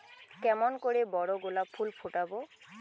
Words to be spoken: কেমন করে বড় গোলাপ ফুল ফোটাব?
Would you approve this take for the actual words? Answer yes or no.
yes